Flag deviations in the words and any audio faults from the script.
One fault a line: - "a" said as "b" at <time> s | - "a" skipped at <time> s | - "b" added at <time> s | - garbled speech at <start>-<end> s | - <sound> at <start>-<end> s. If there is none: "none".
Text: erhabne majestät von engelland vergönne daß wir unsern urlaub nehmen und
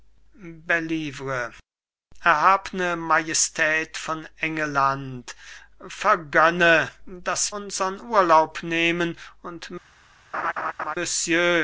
- "wir" skipped at 7.5 s
- laugh at 10.3-11.0 s